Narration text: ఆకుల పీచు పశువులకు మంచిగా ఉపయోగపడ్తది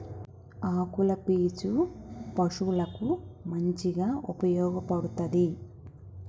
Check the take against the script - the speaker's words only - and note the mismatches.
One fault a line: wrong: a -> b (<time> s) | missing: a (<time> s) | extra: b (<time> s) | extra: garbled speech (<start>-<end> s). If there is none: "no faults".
no faults